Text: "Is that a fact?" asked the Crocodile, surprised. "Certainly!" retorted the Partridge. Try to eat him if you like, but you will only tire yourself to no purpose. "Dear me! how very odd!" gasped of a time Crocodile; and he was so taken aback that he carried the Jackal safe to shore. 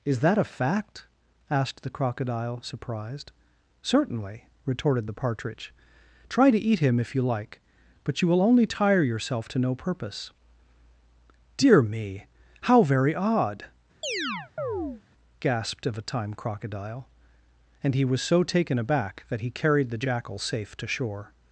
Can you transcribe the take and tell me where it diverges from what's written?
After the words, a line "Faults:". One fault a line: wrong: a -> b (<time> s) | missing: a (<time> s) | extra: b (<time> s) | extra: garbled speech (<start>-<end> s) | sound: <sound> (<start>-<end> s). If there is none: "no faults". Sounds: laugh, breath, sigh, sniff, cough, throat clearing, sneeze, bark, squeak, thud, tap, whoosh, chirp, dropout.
"Is that a fact?" asked the Crocodile, surprised. "Certainly!" retorted the Partridge. Try to eat him if you like, but you will only tire yourself to no purpose. "Dear me! how very odd!" gasped of a time Crocodile; and he was so taken aback that he carried the Jackal safe to shore.
Faults:
sound: chirp (14.0-15.0 s)